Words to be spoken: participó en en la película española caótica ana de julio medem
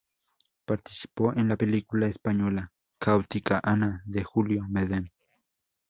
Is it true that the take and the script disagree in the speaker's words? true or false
true